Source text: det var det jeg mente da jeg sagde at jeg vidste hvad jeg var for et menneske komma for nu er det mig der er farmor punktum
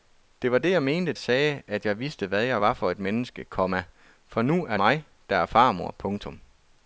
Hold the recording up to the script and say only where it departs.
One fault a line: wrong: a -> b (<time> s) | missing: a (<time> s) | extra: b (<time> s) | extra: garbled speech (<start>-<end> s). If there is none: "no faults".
missing: da jeg (1.1 s)
missing: det (4.8 s)